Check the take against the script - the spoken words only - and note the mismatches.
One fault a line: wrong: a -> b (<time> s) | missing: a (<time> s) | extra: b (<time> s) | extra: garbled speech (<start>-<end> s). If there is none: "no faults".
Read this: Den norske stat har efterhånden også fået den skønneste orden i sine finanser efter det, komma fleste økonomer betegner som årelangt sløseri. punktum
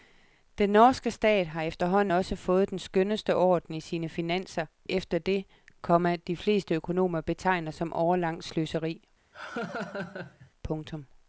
extra: de (6.1 s)